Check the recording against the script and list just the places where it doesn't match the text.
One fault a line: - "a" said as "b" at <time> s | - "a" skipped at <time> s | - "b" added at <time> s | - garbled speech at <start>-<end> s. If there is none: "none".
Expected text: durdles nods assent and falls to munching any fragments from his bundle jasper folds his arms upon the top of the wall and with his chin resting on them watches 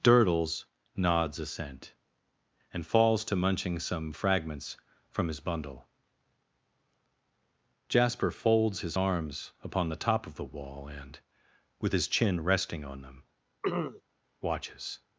- "any" said as "some" at 3.8 s